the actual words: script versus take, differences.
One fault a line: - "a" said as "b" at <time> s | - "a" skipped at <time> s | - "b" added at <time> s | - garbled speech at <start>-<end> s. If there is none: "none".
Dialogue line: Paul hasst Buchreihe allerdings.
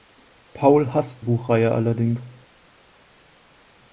none